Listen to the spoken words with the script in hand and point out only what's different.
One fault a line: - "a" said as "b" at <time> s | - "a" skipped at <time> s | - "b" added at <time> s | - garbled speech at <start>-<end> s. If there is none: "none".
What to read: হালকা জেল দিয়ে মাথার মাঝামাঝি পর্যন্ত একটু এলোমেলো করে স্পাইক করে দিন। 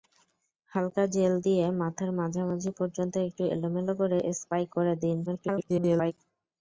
- garbled speech at 5.3-6.1 s